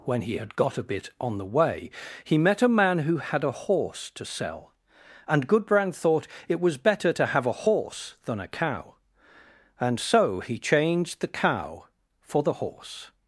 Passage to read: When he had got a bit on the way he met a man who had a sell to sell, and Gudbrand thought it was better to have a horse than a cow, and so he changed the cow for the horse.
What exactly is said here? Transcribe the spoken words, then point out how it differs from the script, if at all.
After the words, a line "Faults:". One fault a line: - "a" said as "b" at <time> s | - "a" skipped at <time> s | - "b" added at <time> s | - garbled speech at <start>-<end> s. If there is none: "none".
When he had got a bit on the way he met a man who had a horse to sell, and Gudbrand thought it was better to have a horse than a cow, and so he changed the cow for the horse.
Faults:
- "sell" said as "horse" at 3.5 s